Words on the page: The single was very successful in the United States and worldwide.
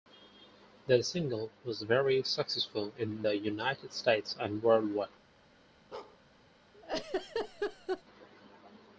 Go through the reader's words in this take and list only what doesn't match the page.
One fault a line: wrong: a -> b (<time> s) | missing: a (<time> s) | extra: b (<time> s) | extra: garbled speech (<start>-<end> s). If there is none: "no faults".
no faults